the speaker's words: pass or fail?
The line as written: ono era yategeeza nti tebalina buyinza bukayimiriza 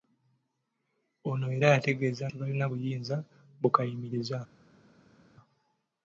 fail